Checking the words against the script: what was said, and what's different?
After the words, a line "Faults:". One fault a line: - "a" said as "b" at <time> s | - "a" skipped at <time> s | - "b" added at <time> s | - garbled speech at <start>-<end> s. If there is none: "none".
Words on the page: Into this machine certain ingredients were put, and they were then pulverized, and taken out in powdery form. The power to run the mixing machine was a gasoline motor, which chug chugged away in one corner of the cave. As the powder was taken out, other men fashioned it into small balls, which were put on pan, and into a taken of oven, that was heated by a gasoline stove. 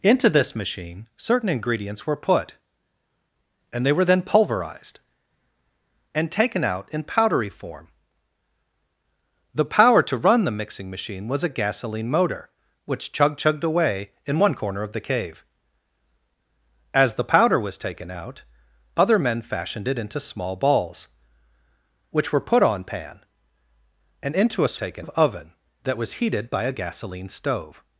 Into this machine certain ingredients were put, and they were then pulverized, and taken out in powdery form. The power to run the mixing machine was a gasoline motor, which chug chugged away in one corner of the cave. As the powder was taken out, other men fashioned it into small balls, which were put on pan, and into a taken of oven, that was heated by a gasoline stove.
Faults:
none